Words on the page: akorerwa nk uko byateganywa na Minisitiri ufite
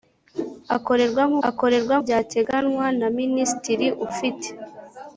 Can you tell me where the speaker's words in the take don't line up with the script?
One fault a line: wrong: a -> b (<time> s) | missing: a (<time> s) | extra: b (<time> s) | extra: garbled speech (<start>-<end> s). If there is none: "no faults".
wrong: uko -> akorerwa (1.5 s)